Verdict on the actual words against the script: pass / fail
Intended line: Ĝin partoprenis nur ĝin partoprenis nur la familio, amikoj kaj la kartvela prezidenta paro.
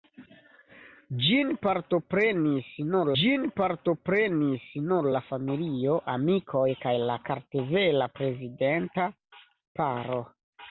pass